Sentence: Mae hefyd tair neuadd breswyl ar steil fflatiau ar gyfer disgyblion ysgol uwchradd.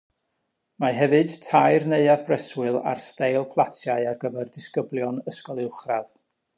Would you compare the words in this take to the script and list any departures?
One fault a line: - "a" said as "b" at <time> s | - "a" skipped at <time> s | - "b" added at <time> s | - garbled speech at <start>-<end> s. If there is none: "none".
none